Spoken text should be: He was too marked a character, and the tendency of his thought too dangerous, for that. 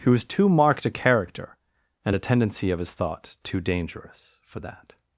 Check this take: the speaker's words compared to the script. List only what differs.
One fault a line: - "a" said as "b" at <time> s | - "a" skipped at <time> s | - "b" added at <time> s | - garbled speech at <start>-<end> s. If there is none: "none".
- "the" said as "a" at 2.1 s